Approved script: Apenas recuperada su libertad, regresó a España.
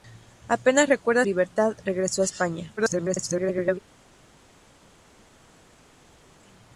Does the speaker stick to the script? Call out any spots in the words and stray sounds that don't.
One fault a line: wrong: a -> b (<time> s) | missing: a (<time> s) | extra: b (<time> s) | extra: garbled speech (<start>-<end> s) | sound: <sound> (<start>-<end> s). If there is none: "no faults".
missing: su (1.3 s)
extra: garbled speech (2.8-3.8 s)